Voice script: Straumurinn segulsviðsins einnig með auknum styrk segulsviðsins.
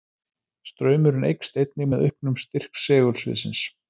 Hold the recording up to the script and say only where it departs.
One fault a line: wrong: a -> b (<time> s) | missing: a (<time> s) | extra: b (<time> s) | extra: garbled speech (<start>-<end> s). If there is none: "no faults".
wrong: segulsviðsins -> eykst (1.3 s)